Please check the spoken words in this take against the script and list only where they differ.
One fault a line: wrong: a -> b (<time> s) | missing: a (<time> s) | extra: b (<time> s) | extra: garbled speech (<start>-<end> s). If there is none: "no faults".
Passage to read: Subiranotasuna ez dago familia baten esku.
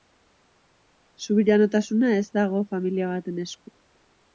no faults